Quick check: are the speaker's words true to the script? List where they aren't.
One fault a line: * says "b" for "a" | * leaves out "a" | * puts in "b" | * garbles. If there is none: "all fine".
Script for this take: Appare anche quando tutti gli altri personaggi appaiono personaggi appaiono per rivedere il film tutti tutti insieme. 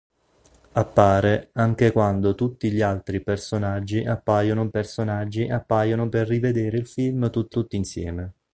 all fine